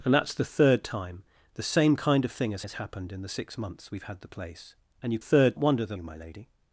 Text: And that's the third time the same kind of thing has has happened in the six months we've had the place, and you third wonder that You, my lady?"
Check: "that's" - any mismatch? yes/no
no